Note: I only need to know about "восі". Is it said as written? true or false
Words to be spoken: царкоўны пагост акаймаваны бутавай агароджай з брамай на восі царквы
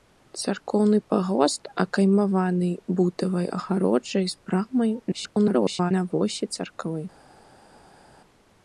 true